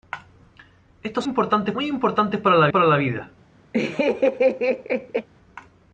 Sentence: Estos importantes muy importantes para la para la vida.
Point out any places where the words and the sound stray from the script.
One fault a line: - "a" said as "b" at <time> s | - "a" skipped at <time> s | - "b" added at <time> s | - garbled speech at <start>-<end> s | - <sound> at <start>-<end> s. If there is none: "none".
- laugh at 3.7-5.3 s